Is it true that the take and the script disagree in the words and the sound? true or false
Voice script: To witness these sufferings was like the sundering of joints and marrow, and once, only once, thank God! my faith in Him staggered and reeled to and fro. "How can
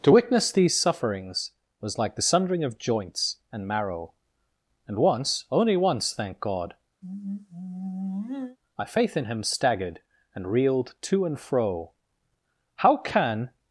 true